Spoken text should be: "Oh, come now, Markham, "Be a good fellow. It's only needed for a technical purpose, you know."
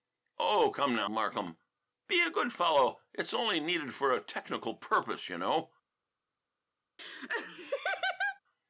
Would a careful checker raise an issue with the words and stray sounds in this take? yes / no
yes